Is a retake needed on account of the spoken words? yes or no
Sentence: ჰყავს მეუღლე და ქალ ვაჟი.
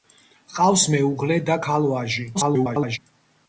yes